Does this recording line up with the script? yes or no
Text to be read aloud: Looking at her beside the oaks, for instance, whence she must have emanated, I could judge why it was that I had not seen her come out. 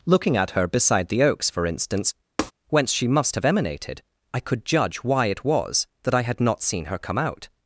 yes